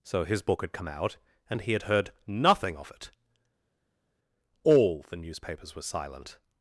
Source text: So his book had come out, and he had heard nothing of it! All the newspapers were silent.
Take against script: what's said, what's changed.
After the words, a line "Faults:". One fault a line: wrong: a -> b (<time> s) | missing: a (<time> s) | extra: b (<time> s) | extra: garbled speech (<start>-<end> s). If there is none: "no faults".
So his book had come out, and he had heard nothing of it! All the newspapers were silent.
Faults:
no faults